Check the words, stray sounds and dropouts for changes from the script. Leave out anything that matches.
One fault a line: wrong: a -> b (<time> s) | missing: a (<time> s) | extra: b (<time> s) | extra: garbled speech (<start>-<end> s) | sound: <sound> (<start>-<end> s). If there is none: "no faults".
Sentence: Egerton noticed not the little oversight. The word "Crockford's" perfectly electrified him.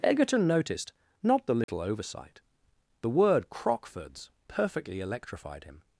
sound: dropout (1.6-1.7 s)